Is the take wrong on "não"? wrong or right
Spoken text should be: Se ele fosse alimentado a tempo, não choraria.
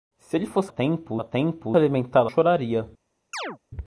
wrong